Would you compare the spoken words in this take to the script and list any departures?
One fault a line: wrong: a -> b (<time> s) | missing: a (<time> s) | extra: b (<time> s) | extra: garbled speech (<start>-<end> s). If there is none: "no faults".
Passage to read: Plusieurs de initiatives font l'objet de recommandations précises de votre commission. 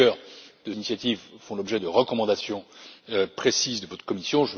no faults